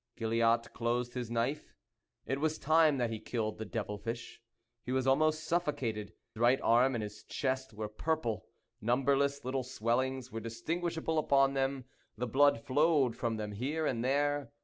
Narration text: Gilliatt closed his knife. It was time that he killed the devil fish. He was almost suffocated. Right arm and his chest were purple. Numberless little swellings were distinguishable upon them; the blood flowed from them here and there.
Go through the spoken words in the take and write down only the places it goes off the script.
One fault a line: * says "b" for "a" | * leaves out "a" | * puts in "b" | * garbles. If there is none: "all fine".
all fine